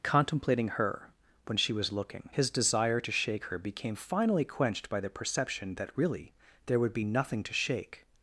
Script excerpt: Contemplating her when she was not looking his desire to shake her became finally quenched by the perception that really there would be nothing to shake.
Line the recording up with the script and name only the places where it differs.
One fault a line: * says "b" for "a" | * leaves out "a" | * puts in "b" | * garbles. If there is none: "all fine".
* leaves out "not"